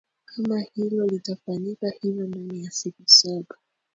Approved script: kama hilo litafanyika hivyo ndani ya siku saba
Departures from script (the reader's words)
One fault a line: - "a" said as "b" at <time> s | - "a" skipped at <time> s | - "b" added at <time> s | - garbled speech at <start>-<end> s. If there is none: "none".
none